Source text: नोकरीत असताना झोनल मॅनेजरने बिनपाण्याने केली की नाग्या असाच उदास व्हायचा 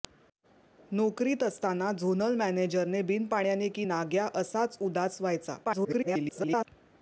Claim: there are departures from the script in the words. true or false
true